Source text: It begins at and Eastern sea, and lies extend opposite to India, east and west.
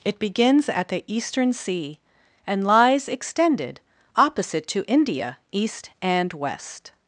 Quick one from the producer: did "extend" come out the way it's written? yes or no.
no